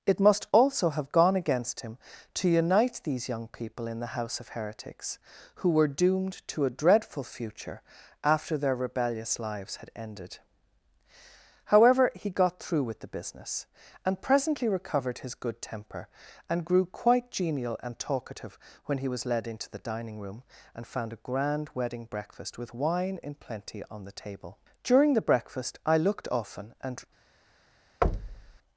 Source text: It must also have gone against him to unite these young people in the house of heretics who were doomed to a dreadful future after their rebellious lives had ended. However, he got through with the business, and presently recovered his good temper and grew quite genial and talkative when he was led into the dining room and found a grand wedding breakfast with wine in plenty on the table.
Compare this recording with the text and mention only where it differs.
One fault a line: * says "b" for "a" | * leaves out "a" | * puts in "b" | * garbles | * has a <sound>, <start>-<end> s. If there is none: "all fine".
* puts in "During the breakfast I looked often and"
* has a thud, 28.0-28.6 s